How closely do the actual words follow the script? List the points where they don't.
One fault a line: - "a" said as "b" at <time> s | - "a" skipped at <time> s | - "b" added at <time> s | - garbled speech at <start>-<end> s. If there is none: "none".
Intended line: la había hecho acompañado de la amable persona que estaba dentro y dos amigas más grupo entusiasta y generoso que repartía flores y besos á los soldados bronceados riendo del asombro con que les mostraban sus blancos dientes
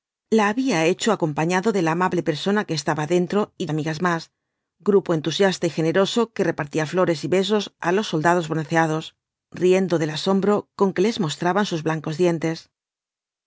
- "dos" skipped at 3.7 s